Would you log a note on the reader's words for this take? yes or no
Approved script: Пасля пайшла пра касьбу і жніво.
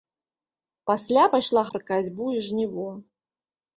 no